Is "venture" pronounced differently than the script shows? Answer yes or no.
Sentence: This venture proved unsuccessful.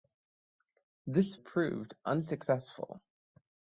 yes